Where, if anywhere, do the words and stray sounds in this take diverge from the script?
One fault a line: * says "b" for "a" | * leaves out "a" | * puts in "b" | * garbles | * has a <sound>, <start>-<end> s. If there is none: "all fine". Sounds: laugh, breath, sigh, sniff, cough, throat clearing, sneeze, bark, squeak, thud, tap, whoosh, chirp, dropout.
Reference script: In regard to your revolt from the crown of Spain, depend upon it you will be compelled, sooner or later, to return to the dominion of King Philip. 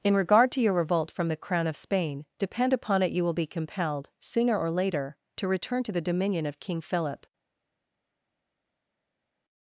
all fine